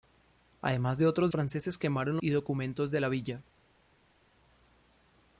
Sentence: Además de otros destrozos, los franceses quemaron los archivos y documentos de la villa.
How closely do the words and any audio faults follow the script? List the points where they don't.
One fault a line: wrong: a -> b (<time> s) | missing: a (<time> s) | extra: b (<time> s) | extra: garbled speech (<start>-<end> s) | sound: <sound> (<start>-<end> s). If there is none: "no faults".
missing: destrozos los (1.3 s)
missing: los archivos (2.2 s)